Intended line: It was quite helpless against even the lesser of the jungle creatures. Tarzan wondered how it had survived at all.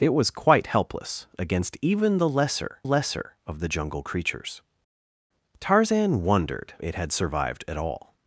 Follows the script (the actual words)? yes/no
no